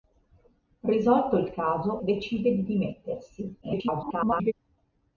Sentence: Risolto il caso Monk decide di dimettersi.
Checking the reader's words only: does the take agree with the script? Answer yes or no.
no